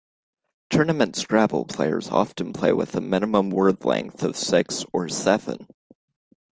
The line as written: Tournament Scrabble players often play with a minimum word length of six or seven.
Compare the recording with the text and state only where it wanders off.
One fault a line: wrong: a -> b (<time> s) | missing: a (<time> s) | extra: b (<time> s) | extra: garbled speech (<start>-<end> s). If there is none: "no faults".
no faults